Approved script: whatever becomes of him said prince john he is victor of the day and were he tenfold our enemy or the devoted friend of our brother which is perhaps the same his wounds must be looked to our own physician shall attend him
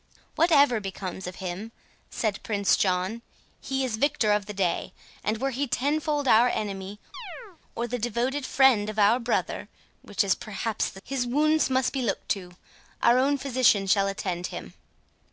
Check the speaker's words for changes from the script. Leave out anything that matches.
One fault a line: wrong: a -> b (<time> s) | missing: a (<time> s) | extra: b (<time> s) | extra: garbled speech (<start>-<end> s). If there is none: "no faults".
missing: same (11.0 s)